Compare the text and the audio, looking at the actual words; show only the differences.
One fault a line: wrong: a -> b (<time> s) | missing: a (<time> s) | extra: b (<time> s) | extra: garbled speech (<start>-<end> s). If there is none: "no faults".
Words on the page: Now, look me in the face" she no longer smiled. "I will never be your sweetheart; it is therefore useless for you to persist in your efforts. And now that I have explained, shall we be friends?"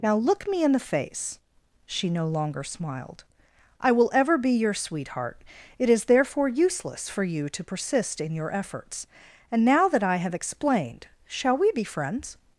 wrong: never -> ever (4.1 s)